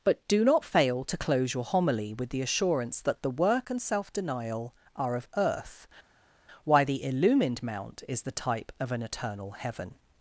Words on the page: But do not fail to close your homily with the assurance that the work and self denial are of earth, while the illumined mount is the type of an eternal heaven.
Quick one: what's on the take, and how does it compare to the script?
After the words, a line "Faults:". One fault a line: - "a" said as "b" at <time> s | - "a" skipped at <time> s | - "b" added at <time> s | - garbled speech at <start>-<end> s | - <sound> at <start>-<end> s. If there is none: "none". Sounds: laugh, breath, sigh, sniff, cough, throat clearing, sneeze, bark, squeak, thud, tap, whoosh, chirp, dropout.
But do not fail to close your homily with the assurance that the work and self denial are of earth, why the illumined mount is the type of an eternal heaven.
Faults:
- "while" said as "why" at 6.6 s